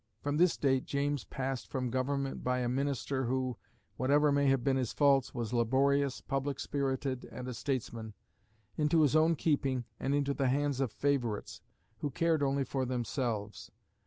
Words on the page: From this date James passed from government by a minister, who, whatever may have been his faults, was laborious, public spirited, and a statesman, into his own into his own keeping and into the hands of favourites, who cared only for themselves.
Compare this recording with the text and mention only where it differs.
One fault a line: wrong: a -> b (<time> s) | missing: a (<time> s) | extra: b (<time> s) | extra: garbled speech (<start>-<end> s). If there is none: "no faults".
missing: into his own (9.3 s)